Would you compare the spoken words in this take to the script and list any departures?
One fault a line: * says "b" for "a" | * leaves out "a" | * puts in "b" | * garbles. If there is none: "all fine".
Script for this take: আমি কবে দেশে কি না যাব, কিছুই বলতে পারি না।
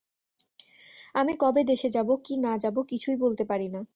* puts in "যাব"